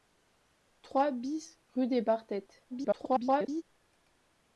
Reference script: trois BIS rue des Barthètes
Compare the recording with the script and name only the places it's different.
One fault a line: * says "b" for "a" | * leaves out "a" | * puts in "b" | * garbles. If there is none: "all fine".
* garbles